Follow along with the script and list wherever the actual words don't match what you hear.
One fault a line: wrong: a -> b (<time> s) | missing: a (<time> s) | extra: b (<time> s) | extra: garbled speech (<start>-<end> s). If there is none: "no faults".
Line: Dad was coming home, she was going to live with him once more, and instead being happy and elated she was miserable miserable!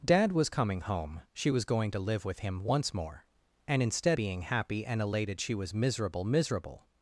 no faults